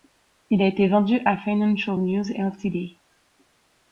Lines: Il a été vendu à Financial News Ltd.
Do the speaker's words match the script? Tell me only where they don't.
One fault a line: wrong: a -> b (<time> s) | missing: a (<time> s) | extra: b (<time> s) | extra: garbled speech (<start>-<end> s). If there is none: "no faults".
no faults